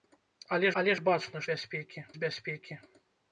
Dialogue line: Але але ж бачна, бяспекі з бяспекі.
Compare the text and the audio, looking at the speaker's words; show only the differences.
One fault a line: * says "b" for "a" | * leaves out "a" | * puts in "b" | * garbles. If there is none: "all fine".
all fine